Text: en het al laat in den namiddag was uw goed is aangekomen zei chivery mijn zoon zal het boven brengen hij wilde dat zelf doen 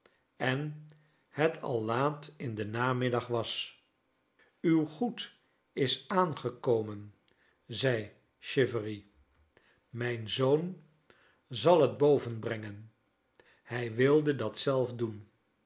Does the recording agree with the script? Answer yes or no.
yes